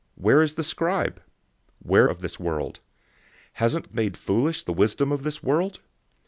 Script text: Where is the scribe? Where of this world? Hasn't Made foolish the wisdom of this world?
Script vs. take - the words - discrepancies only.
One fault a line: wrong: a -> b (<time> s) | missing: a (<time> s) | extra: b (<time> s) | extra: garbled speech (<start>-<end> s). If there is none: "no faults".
no faults